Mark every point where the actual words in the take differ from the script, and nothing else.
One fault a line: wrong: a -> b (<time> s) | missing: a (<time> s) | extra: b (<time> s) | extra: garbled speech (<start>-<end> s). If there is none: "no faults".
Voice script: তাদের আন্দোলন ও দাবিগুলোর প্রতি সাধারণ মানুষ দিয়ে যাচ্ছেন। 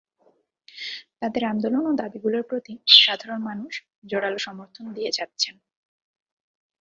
extra: জোরালো সমর্থন (4.0 s)